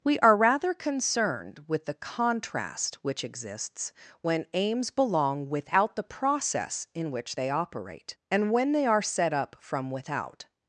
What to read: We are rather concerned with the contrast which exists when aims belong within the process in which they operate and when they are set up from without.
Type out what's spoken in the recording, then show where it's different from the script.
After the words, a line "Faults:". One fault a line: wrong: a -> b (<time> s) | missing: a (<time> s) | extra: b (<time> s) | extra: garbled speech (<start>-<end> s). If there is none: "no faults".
We are rather concerned with the contrast which exists when aims belong without the process in which they operate and when they are set up from without.
Faults:
wrong: within -> without (5.5 s)